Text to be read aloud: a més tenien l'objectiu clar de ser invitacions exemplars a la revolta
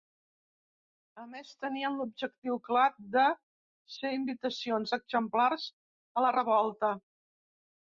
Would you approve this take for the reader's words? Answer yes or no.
yes